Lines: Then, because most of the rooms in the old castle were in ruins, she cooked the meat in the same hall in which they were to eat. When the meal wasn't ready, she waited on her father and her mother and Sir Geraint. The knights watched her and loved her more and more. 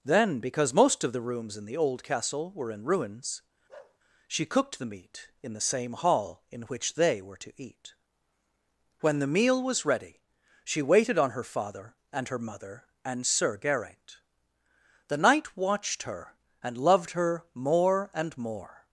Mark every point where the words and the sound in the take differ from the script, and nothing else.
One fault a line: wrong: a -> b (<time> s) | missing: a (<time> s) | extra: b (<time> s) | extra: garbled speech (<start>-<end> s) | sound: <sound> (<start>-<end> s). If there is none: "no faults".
sound: bark (3.7-4.0 s)
wrong: wasn't -> was (9.6 s)
wrong: knights -> knight (15.2 s)